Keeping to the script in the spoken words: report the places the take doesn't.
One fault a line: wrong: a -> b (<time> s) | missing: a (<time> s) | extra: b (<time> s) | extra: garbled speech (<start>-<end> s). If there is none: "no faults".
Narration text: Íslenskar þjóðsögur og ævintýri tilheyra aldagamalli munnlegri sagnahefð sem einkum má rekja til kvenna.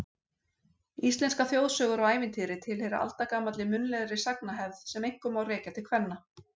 no faults